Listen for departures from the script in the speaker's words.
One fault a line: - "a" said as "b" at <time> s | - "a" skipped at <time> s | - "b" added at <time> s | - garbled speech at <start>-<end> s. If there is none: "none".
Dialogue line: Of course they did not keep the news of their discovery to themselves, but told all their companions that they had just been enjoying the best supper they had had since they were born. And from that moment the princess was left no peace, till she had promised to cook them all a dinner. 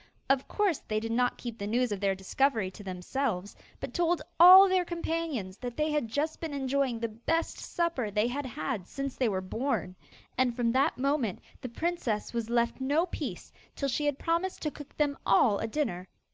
none